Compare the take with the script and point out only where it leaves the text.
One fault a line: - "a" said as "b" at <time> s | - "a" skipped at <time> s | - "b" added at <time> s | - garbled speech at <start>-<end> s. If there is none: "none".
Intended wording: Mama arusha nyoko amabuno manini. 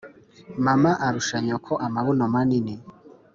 none